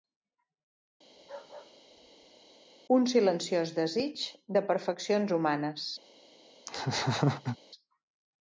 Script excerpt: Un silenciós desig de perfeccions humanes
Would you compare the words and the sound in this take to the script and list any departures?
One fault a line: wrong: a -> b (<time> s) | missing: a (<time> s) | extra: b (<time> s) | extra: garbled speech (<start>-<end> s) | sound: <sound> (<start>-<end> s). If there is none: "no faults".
sound: bark (1.1-2.5 s)
sound: laugh (6.7-7.6 s)